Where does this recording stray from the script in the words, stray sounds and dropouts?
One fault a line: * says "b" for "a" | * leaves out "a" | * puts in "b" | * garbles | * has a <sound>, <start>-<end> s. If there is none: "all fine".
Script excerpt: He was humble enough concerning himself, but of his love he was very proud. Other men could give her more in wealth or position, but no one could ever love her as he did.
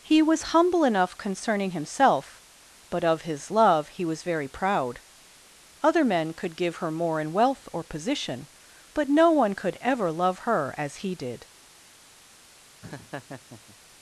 * has a laugh, 12.8-13.8 s